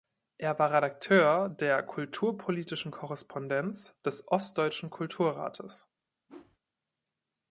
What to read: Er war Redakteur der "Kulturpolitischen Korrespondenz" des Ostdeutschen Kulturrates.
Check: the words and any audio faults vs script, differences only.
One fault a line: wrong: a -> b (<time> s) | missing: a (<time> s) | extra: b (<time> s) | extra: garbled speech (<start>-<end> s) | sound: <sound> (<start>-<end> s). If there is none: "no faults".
sound: whoosh (6.3-6.6 s)